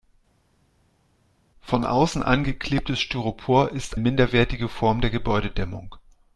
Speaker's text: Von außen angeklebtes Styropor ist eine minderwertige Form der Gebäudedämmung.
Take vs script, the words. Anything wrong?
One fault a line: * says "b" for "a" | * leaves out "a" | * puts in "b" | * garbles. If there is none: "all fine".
* leaves out "eine"